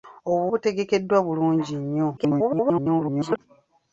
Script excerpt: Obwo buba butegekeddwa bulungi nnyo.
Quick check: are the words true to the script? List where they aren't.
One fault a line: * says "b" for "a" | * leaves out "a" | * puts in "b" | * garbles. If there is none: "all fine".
* leaves out "buba"
* garbles